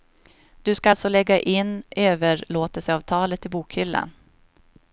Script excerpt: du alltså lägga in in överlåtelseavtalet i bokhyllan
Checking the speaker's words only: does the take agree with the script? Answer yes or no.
no